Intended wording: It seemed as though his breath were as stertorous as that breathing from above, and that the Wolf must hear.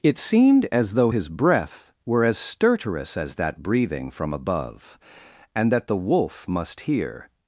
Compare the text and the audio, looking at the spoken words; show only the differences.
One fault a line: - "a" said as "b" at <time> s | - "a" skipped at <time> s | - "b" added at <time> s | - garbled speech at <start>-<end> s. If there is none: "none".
none